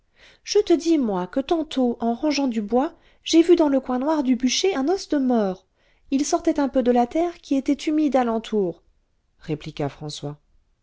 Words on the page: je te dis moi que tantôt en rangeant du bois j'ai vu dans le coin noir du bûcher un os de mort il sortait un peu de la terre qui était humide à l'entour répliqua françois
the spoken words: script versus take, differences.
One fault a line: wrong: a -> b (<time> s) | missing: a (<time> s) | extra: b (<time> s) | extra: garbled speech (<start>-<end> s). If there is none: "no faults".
no faults